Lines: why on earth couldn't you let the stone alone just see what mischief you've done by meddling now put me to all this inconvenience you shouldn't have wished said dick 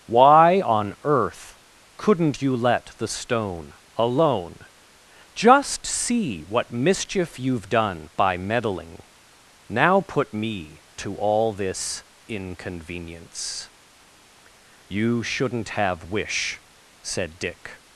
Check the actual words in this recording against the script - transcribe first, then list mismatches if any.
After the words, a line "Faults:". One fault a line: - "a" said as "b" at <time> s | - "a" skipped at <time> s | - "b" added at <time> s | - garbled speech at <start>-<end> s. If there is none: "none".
why on earth couldn't you let the stone alone just see what mischief you've done by meddling now put me to all this inconvenience you shouldn't have wish said dick
Faults:
- "wished" said as "wish" at 16.1 s